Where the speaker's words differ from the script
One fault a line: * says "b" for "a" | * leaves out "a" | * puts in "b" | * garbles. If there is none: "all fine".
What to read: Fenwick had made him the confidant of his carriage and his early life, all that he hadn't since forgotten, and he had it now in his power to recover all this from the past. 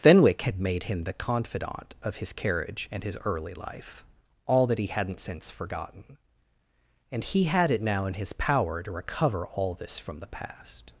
all fine